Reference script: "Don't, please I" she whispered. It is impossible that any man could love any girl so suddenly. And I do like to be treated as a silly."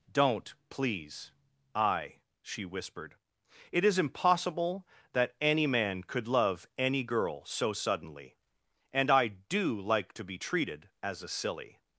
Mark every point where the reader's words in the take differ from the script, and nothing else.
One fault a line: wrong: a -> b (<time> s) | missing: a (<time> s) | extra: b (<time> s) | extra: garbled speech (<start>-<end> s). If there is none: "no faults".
no faults